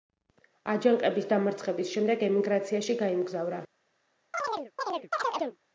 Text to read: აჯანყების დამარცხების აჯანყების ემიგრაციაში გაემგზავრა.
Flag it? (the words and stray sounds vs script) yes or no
yes